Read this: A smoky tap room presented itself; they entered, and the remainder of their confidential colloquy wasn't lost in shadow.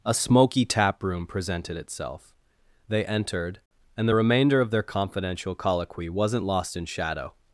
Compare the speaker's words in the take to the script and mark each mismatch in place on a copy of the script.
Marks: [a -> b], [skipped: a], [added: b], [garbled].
A smoky tap room presented itself; they entered, and the remainder of their confidential colloquy wasn't lost in shadow.